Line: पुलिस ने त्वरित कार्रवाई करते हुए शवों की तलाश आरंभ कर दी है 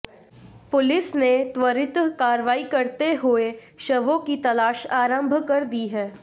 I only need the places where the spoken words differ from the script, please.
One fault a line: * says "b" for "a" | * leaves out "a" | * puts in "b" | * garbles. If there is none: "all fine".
all fine